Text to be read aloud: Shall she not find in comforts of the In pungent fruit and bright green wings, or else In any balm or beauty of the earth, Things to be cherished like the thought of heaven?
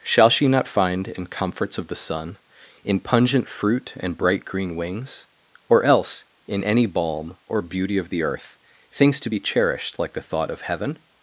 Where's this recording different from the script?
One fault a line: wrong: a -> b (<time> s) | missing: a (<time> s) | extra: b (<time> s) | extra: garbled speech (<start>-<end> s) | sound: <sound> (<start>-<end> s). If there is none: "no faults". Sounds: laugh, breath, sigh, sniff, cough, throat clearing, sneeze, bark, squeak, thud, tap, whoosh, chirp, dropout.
extra: sun (1.9 s)